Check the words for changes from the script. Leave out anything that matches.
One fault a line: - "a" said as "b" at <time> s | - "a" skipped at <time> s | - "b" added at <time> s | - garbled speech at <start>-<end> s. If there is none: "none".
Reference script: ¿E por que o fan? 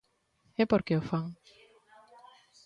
none